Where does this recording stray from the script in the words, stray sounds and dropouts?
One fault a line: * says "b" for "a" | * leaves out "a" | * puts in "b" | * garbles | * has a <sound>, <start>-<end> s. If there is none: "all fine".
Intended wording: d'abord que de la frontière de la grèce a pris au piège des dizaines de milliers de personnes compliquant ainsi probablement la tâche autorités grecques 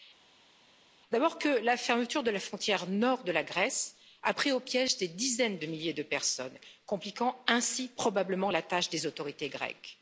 * puts in "la fermeture"
* puts in "nord"
* puts in "des"